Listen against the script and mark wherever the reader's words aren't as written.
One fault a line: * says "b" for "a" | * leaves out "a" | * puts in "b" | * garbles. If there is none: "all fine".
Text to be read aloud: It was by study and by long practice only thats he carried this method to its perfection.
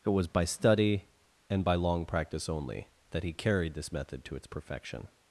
* says "that" for "thats"